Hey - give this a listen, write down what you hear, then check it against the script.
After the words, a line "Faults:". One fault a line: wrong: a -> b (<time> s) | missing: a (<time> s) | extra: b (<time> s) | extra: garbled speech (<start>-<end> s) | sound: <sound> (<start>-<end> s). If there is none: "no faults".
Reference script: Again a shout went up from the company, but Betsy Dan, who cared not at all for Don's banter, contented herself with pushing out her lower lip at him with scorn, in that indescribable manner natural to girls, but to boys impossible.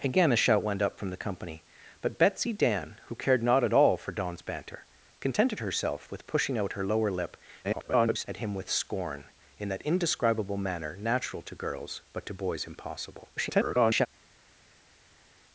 Again a shout went up from the company, but Betsy Dan, who cared not at all for Don's banter, contented herself with pushing out her lower lip [garbled] at him with scorn, in that indescribable manner natural to girls, but to boys impossible. [garbled]
Faults:
extra: garbled speech (7.6-8.3 s)
extra: garbled speech (13.4-14.1 s)